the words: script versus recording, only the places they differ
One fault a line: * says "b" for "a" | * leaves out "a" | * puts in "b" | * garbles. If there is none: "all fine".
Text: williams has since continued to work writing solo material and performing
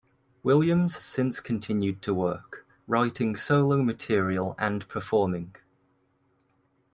* leaves out "has"